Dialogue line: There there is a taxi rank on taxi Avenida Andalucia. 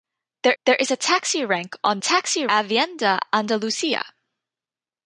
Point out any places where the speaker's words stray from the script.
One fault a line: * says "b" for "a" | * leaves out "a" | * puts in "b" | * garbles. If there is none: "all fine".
all fine